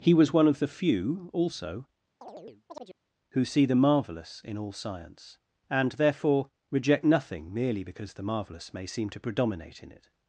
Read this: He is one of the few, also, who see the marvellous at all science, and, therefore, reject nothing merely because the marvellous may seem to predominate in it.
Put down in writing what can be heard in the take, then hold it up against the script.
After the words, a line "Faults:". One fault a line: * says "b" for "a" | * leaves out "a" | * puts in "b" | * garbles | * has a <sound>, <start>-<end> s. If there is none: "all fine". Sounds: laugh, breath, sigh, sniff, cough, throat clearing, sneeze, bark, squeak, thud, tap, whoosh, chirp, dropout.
He was one of the few, also, who see the marvellous in all science, and, therefore, reject nothing merely because the marvellous may seem to predominate in it.
Faults:
* says "was" for "is"
* has a chirp, 2.2-3.0 s
* says "in" for "at"